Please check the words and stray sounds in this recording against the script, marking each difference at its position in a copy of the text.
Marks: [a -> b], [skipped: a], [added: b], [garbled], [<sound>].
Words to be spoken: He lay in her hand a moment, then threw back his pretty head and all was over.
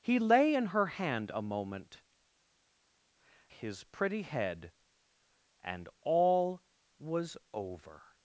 He lay in her hand a moment, [skipped: then threw back] his pretty head and all was over.